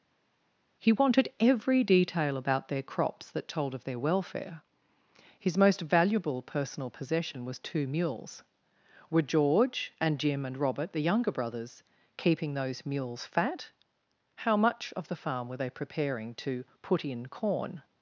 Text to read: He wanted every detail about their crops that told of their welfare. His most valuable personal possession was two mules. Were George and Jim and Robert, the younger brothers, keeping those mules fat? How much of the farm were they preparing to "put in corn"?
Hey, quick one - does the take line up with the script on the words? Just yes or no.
yes